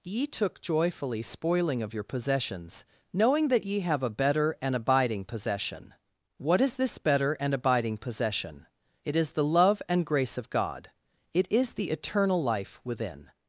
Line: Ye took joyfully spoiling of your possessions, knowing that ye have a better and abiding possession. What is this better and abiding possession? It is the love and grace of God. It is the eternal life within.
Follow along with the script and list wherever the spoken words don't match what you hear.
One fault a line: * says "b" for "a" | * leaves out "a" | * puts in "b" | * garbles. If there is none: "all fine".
all fine